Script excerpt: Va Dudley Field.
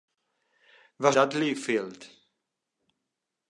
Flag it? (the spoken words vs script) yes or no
no